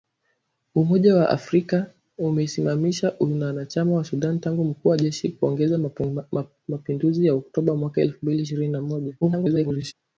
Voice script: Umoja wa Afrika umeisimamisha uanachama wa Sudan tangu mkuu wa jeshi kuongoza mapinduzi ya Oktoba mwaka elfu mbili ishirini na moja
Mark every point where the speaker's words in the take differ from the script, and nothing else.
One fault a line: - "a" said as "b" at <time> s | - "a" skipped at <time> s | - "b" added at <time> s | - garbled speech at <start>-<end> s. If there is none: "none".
- garbled speech at 9.2-9.9 s